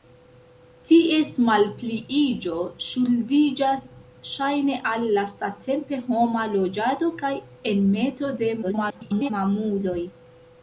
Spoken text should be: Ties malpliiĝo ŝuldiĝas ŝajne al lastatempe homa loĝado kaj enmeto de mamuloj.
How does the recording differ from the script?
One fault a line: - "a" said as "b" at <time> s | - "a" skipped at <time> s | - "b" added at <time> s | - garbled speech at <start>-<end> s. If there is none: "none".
- garbled speech at 8.6-9.3 s